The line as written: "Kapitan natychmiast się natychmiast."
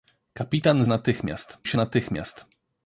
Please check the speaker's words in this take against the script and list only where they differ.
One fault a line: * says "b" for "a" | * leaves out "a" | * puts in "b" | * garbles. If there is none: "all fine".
all fine